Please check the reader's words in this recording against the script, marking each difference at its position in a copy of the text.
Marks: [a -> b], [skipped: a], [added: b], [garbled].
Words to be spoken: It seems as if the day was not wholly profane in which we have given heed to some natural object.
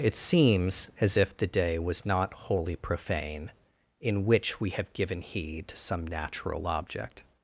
It seems as if the day was not wholly profane in which we have given heed to some natural object.